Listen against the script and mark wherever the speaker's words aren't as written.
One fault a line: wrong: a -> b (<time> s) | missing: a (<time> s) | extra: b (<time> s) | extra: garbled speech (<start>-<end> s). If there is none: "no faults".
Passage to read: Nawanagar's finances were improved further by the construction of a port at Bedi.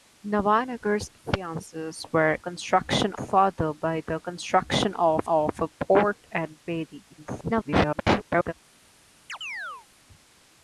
wrong: improved -> construction (2.4 s)
extra: of (5.2 s)
extra: garbled speech (7.1-8.5 s)